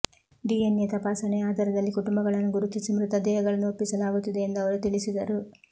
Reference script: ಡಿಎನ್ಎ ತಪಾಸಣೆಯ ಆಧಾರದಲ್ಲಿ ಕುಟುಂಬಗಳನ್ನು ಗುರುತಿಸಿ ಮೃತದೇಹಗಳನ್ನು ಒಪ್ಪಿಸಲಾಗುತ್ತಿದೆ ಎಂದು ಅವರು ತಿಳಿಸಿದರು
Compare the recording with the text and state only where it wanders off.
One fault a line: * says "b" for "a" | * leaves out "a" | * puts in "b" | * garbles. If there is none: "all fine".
all fine